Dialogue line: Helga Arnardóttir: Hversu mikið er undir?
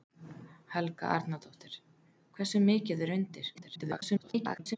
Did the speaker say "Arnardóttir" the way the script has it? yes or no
yes